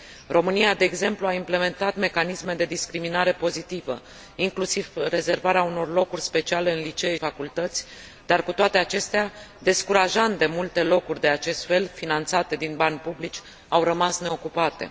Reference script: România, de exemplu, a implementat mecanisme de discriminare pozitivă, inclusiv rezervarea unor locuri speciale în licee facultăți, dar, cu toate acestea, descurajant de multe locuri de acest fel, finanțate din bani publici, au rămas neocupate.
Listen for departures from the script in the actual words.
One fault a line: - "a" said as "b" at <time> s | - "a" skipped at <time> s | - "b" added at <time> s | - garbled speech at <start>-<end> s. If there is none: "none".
none